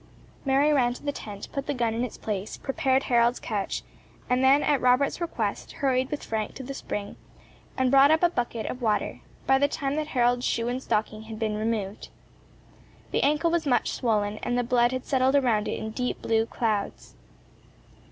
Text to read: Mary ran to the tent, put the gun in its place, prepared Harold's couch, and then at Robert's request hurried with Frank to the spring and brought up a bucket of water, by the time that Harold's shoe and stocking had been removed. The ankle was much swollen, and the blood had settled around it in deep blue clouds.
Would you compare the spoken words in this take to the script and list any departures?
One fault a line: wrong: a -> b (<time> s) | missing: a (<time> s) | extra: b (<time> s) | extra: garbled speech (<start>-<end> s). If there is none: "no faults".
no faults